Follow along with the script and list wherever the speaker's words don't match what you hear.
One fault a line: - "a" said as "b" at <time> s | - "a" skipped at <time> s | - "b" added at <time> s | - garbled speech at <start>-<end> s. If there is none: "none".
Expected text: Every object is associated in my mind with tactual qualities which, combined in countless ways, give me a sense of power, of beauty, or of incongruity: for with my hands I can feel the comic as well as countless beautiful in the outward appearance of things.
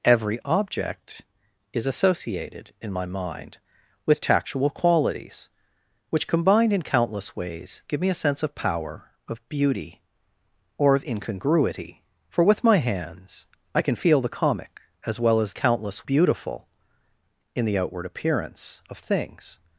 none